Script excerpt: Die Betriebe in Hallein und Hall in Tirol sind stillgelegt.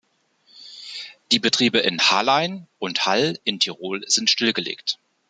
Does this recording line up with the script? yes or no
yes